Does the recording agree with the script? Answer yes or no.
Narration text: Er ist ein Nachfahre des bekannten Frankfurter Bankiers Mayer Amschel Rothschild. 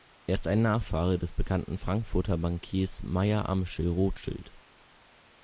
yes